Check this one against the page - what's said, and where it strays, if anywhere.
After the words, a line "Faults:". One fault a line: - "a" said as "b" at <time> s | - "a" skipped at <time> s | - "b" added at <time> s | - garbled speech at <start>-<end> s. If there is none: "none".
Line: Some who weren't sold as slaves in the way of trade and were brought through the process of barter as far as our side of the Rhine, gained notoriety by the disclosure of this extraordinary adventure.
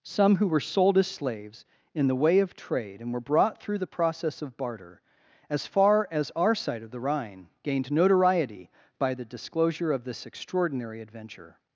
Some who were sold as slaves in the way of trade and were brought through the process of barter as far as our side of the Rhine, gained notoriety by the disclosure of this extraordinary adventure.
Faults:
- "weren't" said as "were" at 0.5 s